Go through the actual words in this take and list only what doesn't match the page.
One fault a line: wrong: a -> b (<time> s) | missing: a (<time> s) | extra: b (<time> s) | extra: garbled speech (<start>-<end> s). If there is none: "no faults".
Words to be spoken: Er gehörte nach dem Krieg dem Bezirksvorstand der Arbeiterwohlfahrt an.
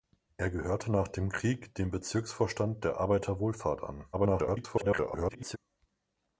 extra: garbled speech (4.1-5.6 s)